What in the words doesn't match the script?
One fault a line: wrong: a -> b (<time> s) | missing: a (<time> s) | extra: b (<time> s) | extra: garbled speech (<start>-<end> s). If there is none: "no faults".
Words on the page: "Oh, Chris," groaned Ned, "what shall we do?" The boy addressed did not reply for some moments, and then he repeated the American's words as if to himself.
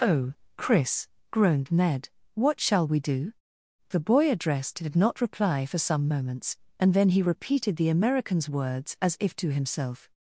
no faults